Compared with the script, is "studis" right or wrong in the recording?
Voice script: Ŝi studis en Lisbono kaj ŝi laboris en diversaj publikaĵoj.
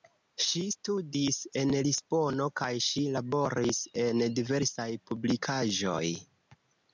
right